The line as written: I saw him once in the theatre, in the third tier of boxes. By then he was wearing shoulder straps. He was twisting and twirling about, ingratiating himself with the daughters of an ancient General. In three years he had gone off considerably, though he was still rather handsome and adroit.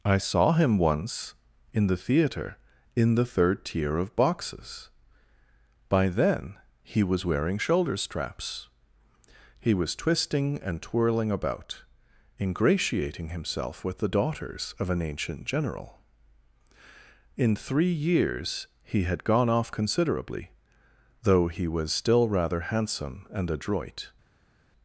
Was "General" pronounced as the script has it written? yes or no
yes